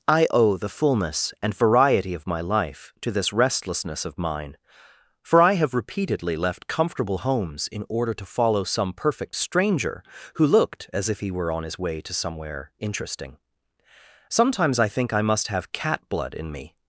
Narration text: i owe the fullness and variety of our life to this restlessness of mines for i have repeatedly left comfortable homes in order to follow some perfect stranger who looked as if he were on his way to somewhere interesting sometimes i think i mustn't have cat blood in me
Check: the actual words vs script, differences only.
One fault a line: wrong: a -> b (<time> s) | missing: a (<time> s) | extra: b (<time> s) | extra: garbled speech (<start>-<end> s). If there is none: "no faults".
wrong: our -> my (2.3 s)
wrong: mines -> mine (4.2 s)
wrong: mustn't -> must (15.2 s)